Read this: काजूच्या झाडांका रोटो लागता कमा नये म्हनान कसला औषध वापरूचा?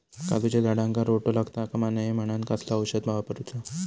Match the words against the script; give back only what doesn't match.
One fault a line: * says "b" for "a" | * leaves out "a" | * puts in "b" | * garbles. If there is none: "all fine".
all fine